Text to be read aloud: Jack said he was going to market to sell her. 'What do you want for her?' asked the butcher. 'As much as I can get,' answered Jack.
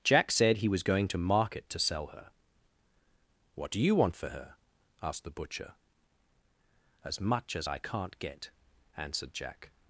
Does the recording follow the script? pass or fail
fail